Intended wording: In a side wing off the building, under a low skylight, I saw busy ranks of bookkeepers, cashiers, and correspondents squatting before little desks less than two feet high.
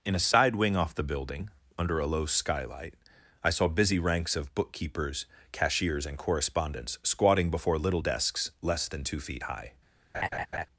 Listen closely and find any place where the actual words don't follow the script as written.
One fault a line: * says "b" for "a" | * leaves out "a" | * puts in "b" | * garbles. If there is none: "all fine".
all fine